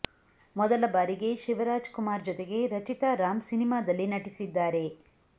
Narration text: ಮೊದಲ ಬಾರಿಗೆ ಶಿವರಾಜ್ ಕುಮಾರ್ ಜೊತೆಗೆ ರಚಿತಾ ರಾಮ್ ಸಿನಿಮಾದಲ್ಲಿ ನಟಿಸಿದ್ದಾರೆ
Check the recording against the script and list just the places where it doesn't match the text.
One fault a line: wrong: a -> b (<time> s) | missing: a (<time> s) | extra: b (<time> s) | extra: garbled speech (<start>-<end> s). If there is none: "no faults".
no faults